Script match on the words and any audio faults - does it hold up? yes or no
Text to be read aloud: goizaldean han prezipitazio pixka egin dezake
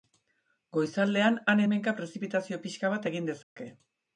no